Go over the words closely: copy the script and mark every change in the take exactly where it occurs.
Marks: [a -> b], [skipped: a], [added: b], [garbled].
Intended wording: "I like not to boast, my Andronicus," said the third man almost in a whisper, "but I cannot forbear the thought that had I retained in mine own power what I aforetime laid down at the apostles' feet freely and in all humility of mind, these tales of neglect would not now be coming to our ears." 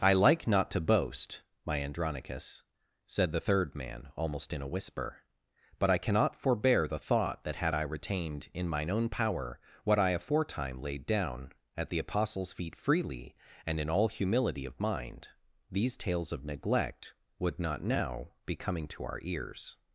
"I like not to boast, my Andronicus," said the third man almost in a whisper, "but I cannot forbear the thought that had I retained in mine own power what I aforetime laid down at the apostles' feet freely and in all humility of mind, these tales of neglect would not now be coming to our ears."